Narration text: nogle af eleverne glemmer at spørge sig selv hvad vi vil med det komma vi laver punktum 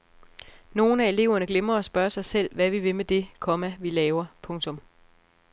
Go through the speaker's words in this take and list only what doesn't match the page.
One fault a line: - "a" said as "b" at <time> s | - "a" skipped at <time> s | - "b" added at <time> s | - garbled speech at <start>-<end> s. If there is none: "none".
none